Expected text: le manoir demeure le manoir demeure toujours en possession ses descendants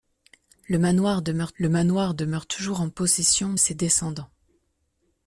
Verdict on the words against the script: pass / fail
pass